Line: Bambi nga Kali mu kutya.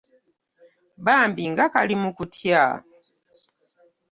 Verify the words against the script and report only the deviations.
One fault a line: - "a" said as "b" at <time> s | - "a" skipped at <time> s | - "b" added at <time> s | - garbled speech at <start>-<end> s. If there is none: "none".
none